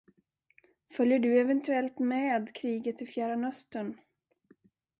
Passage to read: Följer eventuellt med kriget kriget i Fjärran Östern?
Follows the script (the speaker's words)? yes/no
no